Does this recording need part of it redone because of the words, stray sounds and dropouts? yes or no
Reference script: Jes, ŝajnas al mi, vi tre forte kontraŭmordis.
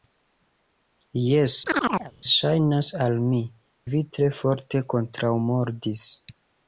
yes